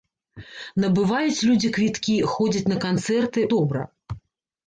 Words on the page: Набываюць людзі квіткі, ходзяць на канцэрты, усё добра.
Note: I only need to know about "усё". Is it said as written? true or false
false